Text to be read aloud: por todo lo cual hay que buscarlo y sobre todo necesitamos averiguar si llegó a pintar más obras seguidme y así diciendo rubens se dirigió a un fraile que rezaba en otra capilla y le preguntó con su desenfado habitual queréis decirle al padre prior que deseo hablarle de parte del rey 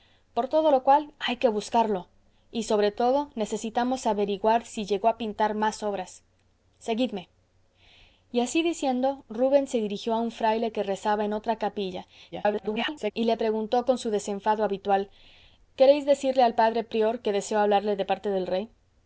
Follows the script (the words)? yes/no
no